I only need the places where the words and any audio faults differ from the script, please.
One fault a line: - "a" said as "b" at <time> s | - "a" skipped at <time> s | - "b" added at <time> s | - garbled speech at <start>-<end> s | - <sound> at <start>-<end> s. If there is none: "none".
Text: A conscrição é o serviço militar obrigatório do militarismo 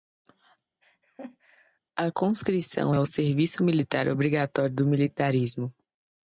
- laugh at 0.8-1.8 s